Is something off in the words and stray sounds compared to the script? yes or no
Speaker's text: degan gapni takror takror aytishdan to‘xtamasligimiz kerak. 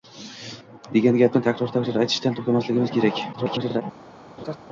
yes